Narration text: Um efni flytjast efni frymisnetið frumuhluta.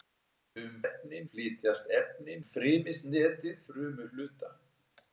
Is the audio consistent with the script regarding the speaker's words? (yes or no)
yes